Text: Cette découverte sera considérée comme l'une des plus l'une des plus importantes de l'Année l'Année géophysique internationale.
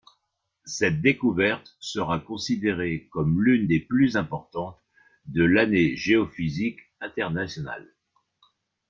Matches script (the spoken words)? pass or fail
fail